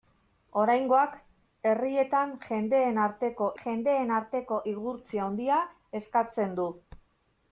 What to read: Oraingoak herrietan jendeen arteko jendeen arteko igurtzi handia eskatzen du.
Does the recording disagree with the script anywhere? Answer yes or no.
no